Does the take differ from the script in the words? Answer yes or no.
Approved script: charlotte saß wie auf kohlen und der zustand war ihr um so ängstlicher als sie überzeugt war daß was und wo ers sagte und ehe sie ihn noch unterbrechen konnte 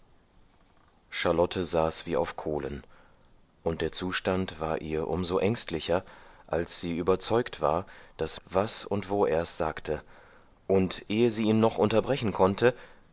no